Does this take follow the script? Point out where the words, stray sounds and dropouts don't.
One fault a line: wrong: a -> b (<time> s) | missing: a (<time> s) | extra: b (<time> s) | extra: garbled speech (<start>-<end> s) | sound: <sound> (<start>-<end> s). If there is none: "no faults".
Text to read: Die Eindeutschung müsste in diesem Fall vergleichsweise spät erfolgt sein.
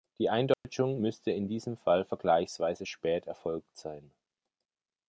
sound: dropout (0.5-0.6 s)